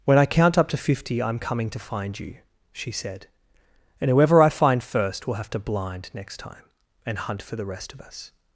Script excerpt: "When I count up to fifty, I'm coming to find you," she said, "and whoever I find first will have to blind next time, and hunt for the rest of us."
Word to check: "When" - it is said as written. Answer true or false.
true